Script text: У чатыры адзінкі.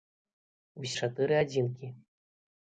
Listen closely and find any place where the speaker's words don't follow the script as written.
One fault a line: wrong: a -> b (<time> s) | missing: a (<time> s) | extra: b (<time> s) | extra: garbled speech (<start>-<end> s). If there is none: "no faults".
no faults